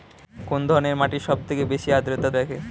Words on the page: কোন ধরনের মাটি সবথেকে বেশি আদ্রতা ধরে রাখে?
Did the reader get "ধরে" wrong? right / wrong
wrong